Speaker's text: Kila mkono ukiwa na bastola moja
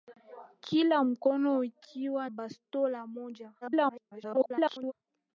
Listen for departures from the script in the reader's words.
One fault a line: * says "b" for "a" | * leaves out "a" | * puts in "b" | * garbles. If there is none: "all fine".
* leaves out "na"
* garbles